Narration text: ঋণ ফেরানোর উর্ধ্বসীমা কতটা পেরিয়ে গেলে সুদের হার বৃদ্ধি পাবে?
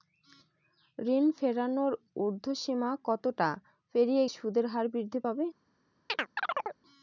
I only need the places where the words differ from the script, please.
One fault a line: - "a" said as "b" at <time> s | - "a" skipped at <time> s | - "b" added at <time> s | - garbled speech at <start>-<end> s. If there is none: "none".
- "গেলে" skipped at 4.2 s